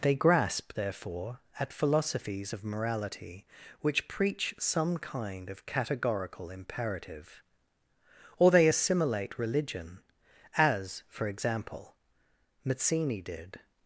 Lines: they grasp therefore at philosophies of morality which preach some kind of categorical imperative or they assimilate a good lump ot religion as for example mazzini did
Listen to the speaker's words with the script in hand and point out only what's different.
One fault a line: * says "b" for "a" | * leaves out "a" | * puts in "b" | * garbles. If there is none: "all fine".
* leaves out "a good lump ot"